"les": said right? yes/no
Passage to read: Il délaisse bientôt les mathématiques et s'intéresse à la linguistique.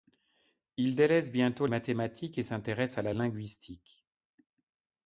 no